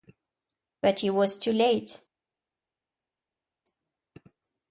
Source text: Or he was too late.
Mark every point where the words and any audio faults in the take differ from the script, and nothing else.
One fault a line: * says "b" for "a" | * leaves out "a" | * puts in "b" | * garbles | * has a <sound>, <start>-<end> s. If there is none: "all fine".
* says "But" for "Or"